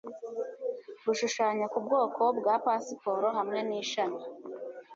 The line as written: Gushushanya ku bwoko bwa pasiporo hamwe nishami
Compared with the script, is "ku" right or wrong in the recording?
right